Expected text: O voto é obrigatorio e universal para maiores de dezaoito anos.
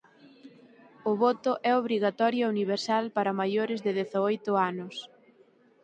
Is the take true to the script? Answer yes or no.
yes